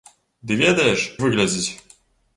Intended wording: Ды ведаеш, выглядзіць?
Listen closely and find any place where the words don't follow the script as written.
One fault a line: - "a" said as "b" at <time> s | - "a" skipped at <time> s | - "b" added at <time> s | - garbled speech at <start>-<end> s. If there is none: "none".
none